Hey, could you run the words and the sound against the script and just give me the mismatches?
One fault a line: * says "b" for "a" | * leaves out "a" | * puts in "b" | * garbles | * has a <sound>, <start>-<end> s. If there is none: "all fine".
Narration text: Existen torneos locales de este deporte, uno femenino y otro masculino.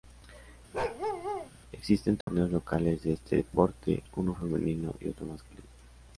* has a bark, 0.7-1.5 s
* has a dropout, 2.2-2.3 s